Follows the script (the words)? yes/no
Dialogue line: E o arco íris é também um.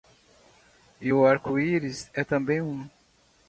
yes